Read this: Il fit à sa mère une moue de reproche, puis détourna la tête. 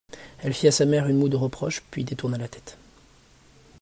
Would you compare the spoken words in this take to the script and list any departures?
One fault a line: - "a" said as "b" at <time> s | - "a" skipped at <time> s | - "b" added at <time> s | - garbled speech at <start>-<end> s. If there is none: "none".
- "Il" said as "Elle" at 0.4 s